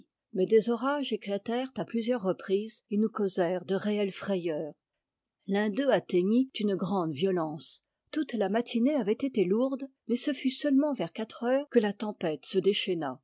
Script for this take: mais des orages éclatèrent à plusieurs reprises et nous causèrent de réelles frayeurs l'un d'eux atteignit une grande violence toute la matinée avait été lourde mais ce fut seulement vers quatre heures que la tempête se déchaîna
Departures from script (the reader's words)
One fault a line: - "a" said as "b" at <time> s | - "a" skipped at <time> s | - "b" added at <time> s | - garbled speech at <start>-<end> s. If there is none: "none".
none